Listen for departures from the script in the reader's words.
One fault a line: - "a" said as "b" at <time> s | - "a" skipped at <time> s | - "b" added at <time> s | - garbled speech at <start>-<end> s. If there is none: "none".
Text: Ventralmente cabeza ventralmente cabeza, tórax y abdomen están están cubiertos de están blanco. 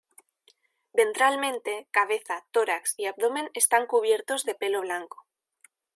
- "ventralmente cabeza" skipped at 2.5 s
- "están" skipped at 3.9 s
- "están" said as "pelo" at 4.5 s